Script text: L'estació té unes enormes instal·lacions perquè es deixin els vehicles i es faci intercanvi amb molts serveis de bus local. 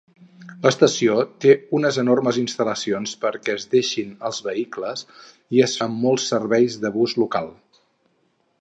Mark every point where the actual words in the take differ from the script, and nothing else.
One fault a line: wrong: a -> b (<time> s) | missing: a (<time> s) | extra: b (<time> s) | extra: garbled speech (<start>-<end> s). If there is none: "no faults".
missing: faci intercanvi (5.8 s)